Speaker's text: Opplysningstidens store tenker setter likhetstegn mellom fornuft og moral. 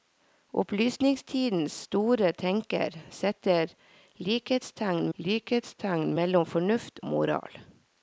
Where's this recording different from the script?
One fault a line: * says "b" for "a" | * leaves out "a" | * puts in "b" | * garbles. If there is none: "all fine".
* puts in "likhetstegn"
* leaves out "og"